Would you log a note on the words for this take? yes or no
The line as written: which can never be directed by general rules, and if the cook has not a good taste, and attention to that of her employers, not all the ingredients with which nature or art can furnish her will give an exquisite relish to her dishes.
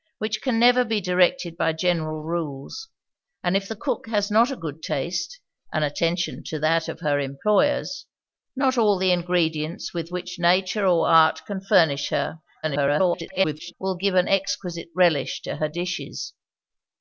yes